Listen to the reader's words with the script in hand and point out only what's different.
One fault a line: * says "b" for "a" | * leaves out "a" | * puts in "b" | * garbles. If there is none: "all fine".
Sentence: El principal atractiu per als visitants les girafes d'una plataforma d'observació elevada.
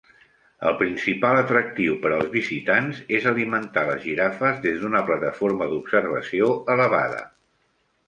* puts in "és alimentar"
* puts in "des"